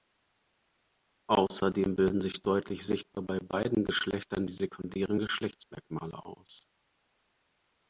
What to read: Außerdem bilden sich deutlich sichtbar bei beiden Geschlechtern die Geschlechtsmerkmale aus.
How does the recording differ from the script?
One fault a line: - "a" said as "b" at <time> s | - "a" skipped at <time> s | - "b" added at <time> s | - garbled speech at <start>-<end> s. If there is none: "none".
- "sekundären" added at 4.5 s